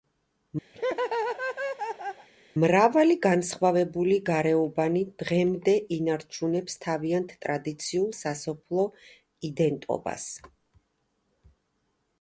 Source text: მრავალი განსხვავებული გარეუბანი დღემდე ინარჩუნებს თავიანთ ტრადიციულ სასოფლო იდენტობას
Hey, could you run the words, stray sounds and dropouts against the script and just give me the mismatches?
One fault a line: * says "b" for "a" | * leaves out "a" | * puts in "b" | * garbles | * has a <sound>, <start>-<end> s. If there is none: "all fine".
* has a laugh, 0.7-2.3 s